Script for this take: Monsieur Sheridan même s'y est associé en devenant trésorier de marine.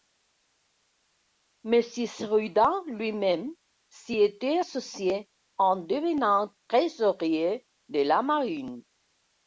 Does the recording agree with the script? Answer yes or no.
no